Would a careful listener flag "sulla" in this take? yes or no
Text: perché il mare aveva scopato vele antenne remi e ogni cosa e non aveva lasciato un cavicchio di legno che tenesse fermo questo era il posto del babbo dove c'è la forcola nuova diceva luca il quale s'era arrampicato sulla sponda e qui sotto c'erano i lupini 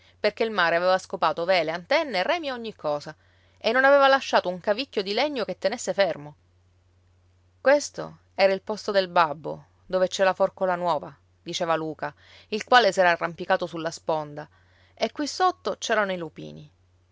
no